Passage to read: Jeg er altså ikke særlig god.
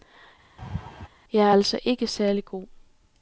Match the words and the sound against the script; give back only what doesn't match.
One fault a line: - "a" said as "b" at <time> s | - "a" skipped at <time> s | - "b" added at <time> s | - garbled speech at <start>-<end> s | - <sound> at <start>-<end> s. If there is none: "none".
- laugh at 0.6-1.1 s